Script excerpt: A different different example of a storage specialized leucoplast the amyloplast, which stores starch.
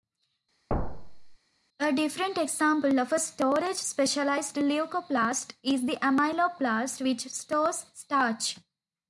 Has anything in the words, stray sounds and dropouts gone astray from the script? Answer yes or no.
yes